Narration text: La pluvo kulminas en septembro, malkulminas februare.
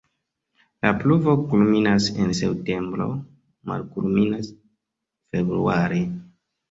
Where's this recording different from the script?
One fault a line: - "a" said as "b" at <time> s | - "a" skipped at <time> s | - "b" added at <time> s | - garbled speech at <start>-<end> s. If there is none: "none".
none